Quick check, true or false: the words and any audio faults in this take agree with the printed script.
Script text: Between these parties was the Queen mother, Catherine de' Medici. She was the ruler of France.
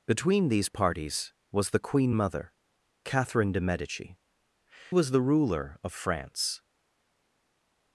false